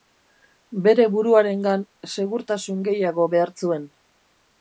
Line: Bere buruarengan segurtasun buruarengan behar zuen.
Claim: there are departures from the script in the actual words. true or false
true